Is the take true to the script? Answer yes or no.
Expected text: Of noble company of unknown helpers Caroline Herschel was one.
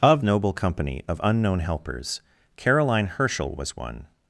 yes